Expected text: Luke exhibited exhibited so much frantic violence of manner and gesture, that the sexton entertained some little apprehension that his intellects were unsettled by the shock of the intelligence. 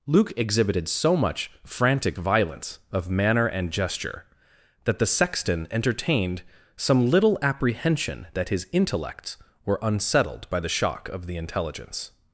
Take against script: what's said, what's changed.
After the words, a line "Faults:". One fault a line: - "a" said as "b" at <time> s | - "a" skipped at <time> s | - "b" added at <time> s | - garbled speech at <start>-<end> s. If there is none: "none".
Luke exhibited so much frantic violence of manner and gesture, that the sexton entertained some little apprehension that his intellects were unsettled by the shock of the intelligence.
Faults:
- "exhibited" skipped at 0.9 s